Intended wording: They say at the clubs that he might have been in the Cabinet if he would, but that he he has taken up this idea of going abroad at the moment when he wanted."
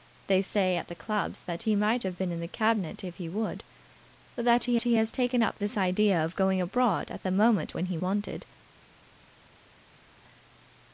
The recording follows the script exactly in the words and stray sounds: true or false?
true